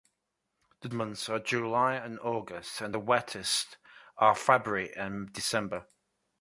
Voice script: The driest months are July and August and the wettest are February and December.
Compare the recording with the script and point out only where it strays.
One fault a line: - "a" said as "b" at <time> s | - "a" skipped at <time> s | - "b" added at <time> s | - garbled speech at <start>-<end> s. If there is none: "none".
- "driest" skipped at 0.9 s